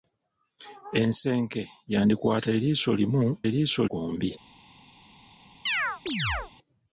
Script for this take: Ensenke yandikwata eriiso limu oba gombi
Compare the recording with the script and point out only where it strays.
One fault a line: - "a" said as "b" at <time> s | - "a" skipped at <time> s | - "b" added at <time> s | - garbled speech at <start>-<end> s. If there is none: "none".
- "oba" said as "eriiso" at 3.5 s